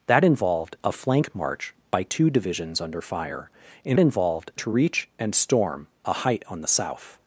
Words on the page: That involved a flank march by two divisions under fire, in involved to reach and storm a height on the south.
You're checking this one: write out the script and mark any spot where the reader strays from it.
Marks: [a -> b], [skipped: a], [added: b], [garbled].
That involved a flank march by two divisions under fire, in involved to reach and storm a height on the south.